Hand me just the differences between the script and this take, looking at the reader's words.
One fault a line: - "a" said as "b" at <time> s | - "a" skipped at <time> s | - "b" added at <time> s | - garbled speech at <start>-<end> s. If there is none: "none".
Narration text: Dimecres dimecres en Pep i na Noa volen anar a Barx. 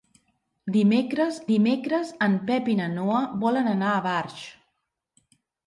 none